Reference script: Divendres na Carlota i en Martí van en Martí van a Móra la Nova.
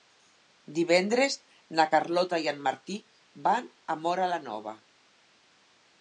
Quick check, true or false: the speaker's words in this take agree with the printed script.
false